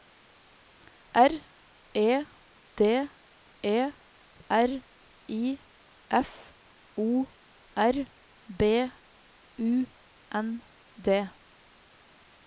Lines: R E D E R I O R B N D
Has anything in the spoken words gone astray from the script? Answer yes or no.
yes